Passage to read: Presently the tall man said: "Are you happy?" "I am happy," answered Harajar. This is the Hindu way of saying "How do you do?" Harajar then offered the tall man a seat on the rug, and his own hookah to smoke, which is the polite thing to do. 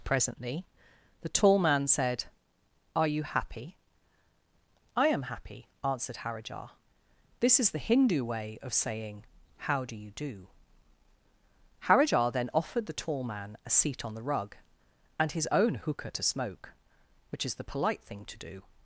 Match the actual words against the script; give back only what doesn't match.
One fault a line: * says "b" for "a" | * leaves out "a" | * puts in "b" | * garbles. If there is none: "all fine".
all fine